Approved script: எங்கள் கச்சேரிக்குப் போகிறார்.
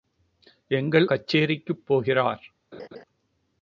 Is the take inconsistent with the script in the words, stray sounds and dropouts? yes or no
yes